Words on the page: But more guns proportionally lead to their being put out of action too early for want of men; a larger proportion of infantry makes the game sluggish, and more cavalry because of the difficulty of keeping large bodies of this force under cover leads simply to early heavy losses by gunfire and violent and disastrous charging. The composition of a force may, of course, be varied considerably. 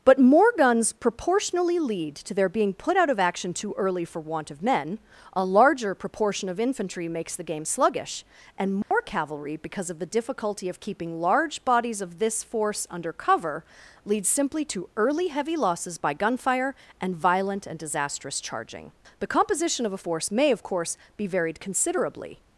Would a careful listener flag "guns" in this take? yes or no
no